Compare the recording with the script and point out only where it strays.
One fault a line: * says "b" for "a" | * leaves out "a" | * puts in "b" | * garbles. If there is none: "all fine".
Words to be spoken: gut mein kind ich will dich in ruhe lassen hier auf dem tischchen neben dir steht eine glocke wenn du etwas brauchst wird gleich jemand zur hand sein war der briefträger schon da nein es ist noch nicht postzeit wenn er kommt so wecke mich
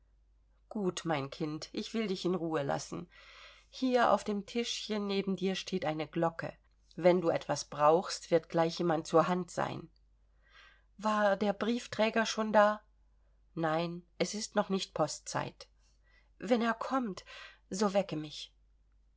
all fine